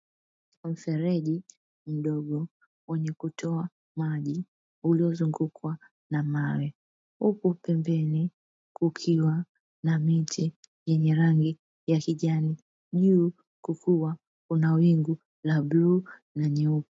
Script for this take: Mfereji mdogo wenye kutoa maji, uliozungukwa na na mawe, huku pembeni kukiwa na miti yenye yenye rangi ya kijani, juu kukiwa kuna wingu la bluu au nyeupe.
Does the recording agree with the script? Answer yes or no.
no